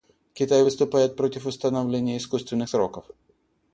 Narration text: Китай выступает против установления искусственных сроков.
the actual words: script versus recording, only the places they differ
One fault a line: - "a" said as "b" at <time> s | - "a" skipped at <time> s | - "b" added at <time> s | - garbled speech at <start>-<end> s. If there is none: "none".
none